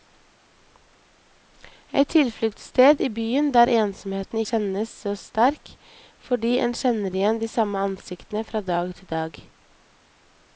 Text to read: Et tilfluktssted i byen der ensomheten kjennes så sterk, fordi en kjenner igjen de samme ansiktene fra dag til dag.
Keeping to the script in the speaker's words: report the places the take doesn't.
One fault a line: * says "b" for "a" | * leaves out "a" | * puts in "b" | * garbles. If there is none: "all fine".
all fine